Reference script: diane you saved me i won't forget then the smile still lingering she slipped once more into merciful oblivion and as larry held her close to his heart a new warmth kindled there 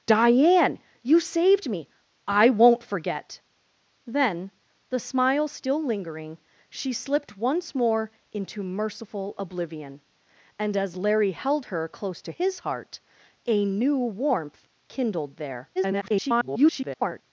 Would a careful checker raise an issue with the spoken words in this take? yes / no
yes